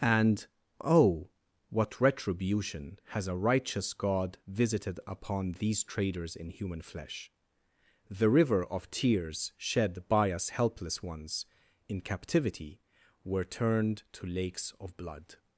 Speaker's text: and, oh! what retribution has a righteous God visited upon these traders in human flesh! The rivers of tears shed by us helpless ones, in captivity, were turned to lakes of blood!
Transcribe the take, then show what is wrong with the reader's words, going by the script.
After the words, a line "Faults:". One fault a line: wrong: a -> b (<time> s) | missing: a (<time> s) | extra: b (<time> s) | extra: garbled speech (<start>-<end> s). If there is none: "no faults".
and, oh! what retribution has a righteous God visited upon these traders in human flesh! The river of tears shed by us helpless ones, in captivity, were turned to lakes of blood!
Faults:
wrong: rivers -> river (8.3 s)